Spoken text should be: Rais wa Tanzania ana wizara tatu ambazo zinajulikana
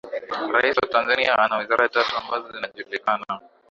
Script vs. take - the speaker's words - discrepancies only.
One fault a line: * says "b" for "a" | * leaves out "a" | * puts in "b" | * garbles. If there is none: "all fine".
all fine